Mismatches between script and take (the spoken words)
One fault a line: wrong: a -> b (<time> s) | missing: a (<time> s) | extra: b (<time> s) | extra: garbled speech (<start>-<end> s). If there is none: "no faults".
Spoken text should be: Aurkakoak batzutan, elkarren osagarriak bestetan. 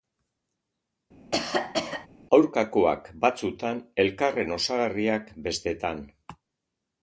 no faults